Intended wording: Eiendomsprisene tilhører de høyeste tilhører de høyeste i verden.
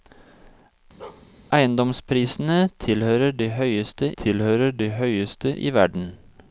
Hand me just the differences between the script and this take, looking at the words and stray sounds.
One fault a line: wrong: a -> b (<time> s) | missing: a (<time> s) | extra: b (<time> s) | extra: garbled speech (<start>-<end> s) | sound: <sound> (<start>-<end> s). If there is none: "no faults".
sound: bark (1.0-1.3 s)